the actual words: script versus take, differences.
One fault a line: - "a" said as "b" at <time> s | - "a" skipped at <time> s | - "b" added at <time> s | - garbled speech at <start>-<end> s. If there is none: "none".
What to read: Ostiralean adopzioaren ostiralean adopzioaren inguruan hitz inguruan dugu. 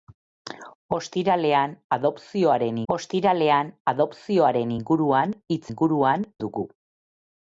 none